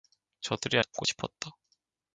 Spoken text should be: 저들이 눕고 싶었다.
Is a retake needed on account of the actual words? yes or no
no